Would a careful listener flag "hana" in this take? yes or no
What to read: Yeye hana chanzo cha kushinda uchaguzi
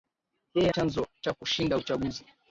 yes